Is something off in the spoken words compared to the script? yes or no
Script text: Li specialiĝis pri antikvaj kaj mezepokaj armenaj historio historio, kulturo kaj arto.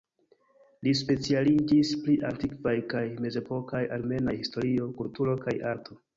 yes